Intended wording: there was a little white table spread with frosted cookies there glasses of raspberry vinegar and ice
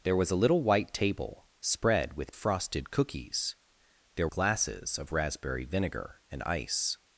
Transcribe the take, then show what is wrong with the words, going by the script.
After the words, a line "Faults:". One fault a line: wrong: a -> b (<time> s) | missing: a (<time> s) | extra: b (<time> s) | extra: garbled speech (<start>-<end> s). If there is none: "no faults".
there was a little white table spread with frosted cookies there glasses of raspberry vinegar and ice
Faults:
no faults